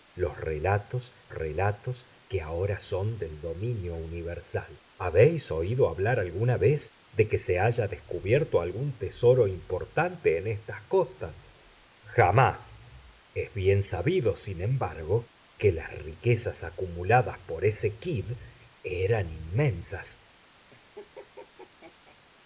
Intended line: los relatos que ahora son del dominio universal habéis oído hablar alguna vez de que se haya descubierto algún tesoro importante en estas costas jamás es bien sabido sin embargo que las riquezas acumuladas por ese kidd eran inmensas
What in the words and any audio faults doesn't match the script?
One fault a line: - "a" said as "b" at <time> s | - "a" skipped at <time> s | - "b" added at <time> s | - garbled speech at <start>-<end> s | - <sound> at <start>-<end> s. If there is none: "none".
- "relatos" added at 1.3 s
- laugh at 20.7-22.2 s